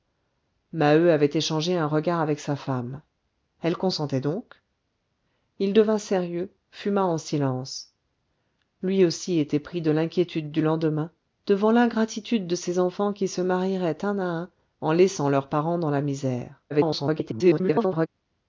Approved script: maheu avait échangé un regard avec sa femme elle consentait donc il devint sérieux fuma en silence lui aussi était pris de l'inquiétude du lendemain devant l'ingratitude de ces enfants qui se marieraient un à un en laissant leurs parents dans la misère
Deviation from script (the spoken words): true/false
true